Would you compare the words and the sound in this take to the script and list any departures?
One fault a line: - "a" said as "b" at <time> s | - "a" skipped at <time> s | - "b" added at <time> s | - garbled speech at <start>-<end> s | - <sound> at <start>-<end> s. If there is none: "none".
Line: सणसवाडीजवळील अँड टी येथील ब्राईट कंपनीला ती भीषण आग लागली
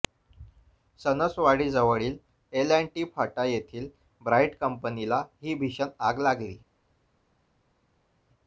- "एल" added at 2.5 s
- "फाटा" added at 3.1 s
- "ती" said as "ही" at 5.4 s